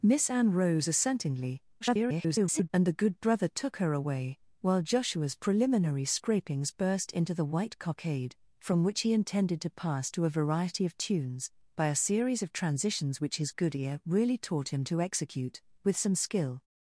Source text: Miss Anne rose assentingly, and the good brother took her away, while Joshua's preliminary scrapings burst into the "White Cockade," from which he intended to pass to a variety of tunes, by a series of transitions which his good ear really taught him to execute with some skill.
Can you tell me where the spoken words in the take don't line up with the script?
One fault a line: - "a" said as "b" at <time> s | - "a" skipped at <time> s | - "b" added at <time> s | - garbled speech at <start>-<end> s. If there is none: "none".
- garbled speech at 1.8-2.7 s